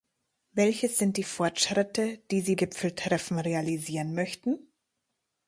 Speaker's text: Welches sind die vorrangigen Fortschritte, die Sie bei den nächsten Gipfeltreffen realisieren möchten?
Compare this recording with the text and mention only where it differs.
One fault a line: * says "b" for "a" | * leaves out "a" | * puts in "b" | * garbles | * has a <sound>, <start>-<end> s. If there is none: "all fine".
* leaves out "vorrangigen"
* leaves out "bei den nächsten"